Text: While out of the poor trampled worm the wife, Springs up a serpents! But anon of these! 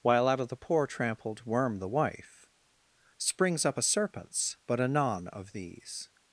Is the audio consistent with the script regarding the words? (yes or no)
yes